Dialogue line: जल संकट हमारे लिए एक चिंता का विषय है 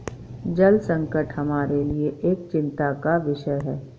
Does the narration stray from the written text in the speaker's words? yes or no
no